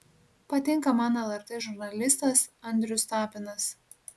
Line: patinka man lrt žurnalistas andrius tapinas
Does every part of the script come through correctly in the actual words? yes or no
yes